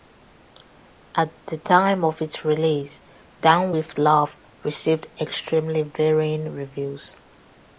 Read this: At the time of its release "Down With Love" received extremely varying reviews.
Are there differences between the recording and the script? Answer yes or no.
no